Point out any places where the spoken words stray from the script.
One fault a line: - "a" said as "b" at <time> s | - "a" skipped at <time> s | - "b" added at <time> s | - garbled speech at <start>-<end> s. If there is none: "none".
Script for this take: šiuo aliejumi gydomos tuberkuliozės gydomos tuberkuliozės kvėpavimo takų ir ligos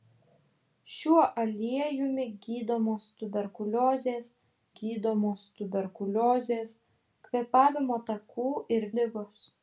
none